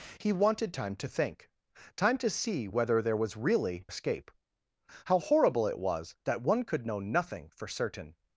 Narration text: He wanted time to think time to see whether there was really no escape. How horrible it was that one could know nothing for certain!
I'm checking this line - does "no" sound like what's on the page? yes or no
no